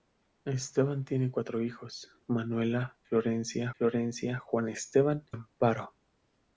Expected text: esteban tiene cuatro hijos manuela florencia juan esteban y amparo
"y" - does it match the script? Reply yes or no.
no